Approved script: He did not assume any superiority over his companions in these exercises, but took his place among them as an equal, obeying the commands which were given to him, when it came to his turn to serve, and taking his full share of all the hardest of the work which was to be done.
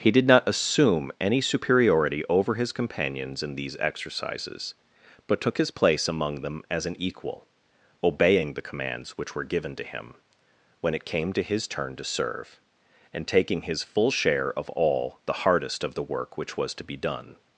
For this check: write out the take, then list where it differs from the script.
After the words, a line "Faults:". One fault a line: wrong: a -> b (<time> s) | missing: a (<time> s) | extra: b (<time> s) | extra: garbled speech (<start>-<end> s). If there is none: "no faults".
He did not assume any superiority over his companions in these exercises, but took his place among them as an equal, obeying the commands which were given to him, when it came to his turn to serve, and taking his full share of all the hardest of the work which was to be done.
Faults:
no faults